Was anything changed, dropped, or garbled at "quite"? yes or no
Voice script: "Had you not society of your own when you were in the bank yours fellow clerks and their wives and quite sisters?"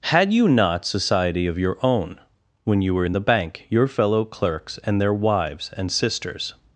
yes